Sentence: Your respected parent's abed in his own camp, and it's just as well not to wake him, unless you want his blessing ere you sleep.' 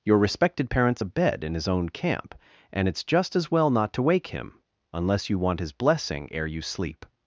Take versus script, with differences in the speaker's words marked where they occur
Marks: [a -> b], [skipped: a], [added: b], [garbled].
Your respected parent's abed in his own camp, and it's just as well not to wake him, unless you want his blessing ere you sleep.'